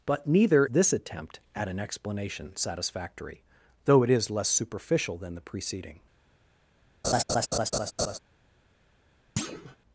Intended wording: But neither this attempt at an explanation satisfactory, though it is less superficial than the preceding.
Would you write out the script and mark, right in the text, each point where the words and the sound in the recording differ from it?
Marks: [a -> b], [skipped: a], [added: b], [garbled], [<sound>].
But neither this attempt at an explanation satisfactory, though it is less superficial than the preceding. [laugh] [thud]